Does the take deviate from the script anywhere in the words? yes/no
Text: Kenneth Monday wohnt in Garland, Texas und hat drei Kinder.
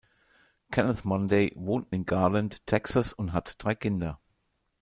no